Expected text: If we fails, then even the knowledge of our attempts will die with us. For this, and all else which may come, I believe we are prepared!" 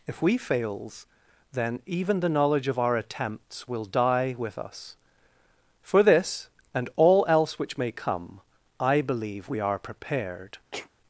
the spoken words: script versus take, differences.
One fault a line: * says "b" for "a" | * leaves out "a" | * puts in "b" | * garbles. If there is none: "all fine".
all fine